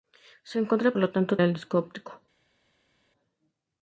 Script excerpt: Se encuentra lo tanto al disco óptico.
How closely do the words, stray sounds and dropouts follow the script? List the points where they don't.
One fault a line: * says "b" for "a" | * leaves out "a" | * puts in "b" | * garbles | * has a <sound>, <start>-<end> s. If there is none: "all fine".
all fine